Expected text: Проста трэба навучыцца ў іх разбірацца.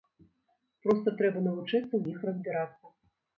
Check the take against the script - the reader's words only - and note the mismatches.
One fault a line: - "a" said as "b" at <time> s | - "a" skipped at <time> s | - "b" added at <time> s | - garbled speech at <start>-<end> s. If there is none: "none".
none